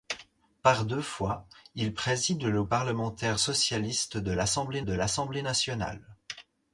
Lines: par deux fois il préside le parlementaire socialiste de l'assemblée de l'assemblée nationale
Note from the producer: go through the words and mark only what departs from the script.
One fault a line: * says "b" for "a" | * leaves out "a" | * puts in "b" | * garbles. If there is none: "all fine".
all fine